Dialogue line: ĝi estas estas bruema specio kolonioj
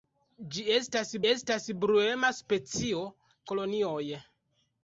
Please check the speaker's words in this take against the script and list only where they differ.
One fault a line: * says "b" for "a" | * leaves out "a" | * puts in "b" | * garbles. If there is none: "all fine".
all fine